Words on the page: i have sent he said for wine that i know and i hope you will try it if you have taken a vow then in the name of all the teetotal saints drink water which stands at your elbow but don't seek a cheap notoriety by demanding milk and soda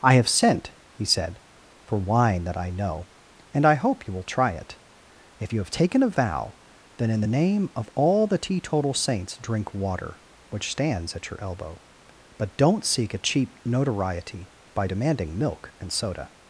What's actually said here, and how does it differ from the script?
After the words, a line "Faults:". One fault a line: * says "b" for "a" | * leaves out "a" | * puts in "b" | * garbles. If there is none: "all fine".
i have sent he said for wine that i know and i hope you will try it if you have taken a vow then in the name of all the teetotal saints drink water which stands at your elbow but don't seek a cheap notoriety by demanding milk and soda
Faults:
all fine